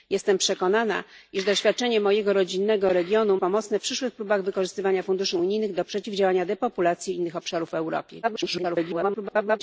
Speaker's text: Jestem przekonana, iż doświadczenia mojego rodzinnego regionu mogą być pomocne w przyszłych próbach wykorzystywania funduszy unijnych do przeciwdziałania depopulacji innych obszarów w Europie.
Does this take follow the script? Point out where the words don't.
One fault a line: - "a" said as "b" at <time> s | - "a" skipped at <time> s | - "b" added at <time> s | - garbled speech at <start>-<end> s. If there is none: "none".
- "mogą być" skipped at 3.4 s
- garbled speech at 8.2-9.6 s